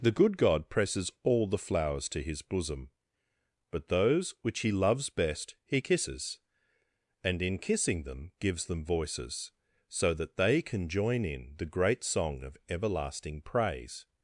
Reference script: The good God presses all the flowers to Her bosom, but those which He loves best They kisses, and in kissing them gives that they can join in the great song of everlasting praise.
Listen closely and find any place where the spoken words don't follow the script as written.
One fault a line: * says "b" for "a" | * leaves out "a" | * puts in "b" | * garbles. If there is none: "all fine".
* says "His" for "Her"
* says "He" for "They"
* puts in "them voices so"